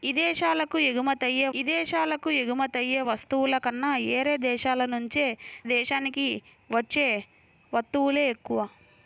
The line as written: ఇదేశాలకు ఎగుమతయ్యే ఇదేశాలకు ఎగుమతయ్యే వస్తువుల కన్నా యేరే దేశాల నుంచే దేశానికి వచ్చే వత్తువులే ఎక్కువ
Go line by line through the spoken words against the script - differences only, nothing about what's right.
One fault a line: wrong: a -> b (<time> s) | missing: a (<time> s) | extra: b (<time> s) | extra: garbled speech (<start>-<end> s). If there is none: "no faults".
no faults